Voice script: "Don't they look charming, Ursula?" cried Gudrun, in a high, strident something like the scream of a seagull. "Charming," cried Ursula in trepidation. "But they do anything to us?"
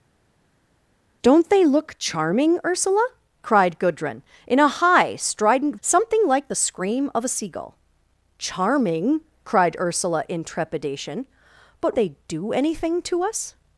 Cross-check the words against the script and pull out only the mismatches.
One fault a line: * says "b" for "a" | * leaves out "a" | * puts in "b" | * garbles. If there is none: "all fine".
all fine